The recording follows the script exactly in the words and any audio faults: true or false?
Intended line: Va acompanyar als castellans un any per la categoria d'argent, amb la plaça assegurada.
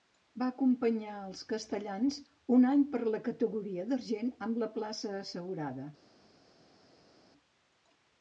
true